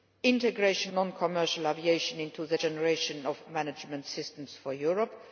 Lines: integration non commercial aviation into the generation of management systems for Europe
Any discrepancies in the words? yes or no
no